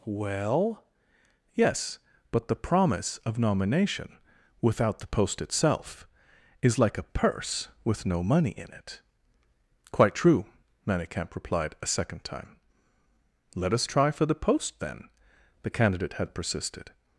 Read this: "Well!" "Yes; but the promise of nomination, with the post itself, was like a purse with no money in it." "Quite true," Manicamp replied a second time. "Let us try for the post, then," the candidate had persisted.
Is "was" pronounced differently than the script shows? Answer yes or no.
yes